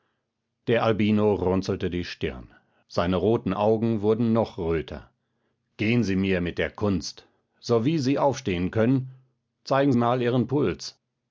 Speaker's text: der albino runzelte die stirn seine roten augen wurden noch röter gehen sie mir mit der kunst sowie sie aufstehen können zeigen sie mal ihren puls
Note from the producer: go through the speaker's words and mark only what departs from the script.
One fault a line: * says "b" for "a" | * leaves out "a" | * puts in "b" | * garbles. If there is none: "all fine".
* leaves out "sie"